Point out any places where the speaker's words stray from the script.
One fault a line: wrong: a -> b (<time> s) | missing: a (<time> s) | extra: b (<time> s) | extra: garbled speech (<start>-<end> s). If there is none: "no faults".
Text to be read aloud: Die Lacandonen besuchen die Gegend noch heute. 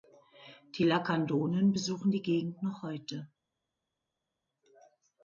no faults